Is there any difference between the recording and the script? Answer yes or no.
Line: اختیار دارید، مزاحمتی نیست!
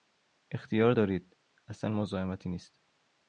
yes